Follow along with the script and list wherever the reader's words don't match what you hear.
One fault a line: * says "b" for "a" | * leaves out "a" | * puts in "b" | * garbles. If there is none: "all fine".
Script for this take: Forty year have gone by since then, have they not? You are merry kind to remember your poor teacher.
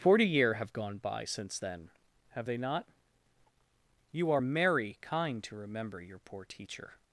all fine